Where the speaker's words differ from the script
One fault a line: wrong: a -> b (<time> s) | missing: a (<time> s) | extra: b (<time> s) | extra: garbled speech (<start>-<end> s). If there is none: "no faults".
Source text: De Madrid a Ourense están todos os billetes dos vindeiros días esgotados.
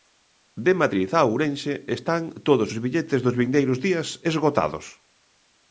no faults